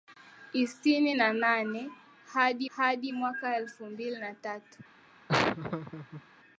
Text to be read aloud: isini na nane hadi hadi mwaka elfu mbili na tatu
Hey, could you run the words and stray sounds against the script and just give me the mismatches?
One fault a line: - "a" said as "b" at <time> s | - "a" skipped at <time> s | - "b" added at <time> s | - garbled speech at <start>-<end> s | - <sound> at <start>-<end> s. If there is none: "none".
- laugh at 5.3-6.2 s